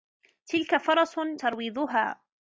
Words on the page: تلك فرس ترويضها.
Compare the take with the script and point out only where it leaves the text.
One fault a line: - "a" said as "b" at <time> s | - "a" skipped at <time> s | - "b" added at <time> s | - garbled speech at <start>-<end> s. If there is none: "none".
none